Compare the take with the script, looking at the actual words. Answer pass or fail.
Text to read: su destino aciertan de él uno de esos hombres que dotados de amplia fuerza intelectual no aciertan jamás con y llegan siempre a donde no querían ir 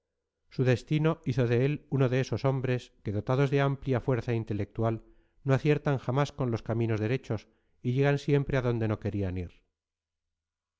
fail